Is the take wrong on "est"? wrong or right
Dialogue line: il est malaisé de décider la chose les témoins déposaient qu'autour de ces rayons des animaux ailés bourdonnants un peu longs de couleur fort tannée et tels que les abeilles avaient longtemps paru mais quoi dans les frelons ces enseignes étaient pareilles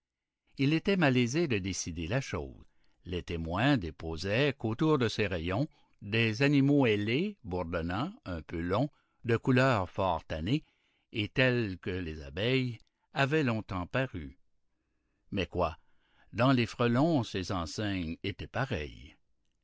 wrong